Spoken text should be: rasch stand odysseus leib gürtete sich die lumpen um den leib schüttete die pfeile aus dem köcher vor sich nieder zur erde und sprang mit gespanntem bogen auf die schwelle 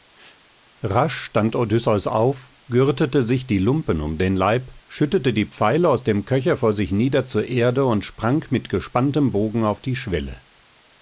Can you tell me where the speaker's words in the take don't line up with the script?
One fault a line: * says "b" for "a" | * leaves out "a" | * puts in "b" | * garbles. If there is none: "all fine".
* says "auf" for "leib"